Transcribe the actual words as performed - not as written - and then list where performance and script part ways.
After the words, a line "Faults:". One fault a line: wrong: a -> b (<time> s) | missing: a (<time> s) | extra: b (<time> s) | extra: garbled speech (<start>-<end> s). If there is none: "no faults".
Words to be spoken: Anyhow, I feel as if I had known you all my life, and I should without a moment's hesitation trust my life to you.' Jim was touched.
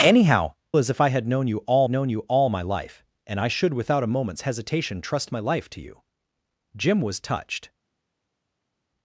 Anyhow, as if I had known you all known you all my life, and I should without a moment's hesitation trust my life to you.' Jim was touched.
Faults:
missing: I feel (0.5 s)
extra: known you all (1.9 s)